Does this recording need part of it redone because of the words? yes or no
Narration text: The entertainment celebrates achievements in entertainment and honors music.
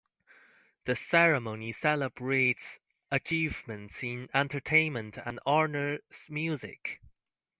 yes